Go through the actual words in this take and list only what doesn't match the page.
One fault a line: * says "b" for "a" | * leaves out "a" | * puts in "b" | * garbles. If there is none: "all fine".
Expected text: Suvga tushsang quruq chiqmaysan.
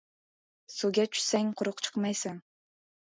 all fine